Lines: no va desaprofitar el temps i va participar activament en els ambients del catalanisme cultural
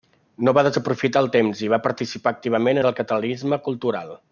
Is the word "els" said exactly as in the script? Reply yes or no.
no